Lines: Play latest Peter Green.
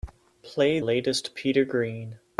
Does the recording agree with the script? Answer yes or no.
yes